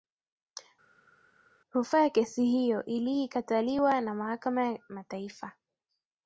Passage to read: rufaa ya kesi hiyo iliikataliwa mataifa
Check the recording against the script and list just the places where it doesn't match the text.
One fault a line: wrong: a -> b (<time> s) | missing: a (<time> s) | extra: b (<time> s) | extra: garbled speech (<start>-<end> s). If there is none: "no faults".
extra: na mahakama ya (4.0 s)